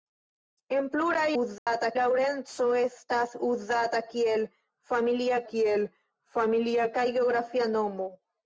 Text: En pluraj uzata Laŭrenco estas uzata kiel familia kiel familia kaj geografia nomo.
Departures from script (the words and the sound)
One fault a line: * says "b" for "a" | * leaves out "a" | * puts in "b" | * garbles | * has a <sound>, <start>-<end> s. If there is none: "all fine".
* has a dropout, 1.6-1.7 s